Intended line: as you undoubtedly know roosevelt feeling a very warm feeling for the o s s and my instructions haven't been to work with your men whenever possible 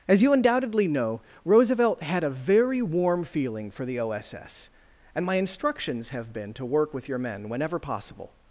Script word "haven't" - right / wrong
wrong